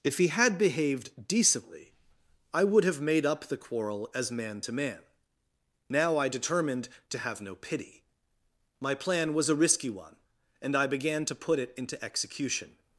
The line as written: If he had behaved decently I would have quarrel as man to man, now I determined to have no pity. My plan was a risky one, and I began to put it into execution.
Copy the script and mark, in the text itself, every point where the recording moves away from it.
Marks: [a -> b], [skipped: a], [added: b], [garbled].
If he had behaved decently I would have [added: made up the] quarrel as man to man, now I determined to have no pity. My plan was a risky one, and I began to put it into execution.